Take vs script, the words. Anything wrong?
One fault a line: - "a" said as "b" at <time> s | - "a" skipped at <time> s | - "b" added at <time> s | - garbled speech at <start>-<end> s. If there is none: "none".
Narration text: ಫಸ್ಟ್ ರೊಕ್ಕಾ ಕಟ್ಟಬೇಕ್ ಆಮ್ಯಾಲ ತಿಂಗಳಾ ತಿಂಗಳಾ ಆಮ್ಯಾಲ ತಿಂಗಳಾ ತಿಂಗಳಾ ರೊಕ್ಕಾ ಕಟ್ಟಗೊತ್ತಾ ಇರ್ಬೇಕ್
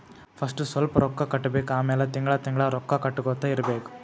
- "ಸ್ವಲ್ಪ್" added at 0.6 s
- "ಆಮ್ಯಾಲ ತಿಂಗಳಾ ತಿಂಗಳಾ" skipped at 2.7 s